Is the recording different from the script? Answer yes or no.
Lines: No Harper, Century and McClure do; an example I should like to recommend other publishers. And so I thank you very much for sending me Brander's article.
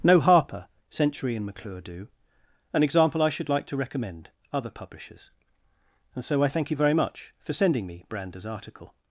no